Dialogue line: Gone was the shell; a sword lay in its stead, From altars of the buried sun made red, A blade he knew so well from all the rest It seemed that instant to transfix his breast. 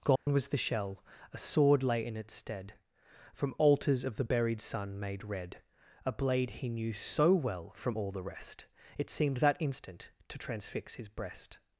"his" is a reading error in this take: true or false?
false